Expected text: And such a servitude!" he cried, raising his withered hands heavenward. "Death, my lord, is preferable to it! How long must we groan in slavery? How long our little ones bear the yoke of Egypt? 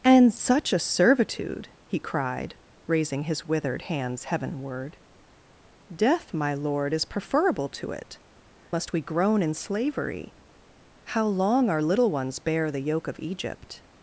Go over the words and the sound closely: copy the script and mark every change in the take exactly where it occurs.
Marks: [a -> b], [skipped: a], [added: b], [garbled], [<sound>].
And such a servitude!" he cried, raising his withered hands heavenward. "Death, my lord, is preferable to it! [skipped: How long] must we groan in slavery? How long our little ones bear the yoke of Egypt?